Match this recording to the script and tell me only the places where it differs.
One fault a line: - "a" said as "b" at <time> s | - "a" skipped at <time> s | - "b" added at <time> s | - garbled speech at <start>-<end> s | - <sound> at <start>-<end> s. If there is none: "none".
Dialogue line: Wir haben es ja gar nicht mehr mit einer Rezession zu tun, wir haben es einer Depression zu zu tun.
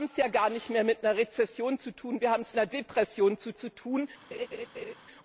- laugh at 4.3-4.9 s